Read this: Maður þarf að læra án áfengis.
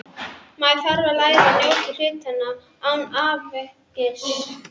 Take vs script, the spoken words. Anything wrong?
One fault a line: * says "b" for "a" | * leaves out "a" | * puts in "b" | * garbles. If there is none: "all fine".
* puts in "að njóta hlutanna"